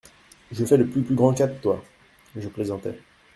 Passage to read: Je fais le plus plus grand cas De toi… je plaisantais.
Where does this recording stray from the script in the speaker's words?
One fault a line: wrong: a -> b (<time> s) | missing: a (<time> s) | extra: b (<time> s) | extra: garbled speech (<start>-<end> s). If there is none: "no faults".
no faults